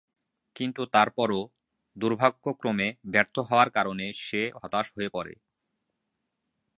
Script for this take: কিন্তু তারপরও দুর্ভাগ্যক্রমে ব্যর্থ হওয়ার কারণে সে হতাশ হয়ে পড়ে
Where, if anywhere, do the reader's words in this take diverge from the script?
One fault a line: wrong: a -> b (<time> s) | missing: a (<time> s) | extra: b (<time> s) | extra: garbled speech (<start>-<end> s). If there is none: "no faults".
no faults